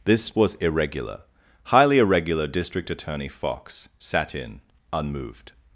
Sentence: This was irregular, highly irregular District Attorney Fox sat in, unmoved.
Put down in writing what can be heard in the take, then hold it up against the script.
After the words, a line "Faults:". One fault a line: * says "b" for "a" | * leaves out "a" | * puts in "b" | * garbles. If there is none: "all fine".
This was irregular, highly irregular District Attorney Fox sat in, unmoved.
Faults:
all fine